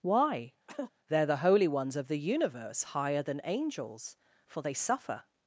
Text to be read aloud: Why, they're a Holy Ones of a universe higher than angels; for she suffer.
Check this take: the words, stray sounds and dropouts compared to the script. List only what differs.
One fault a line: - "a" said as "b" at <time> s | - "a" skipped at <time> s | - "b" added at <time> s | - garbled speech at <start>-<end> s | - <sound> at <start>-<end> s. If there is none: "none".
- cough at 0.7-0.9 s
- "a" said as "the" at 1.3 s
- "a" said as "the" at 2.1 s
- "she" said as "they" at 4.6 s